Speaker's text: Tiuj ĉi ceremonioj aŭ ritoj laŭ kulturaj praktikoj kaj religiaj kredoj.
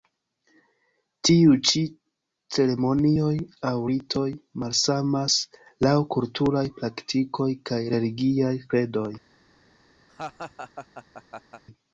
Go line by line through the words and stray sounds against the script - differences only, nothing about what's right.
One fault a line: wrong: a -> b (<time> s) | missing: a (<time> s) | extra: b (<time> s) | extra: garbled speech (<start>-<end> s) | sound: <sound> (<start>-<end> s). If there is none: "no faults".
extra: malsamas (4.6 s)
sound: laugh (10.1-11.6 s)